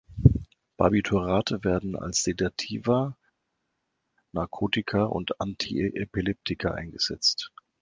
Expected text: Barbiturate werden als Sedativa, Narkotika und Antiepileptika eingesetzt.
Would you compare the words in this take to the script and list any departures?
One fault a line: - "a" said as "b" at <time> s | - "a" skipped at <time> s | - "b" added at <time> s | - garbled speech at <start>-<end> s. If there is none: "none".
none